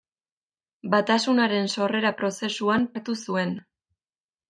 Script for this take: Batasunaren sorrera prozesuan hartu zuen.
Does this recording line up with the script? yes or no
yes